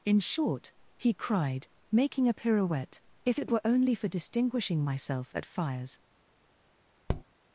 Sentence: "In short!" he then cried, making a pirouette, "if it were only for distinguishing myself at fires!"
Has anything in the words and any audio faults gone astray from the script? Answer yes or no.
yes